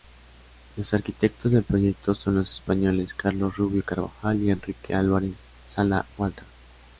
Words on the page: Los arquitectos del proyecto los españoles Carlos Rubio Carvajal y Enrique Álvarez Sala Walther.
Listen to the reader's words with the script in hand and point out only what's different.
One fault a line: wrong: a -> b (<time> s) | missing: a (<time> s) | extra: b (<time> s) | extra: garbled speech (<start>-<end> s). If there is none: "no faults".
extra: son (2.1 s)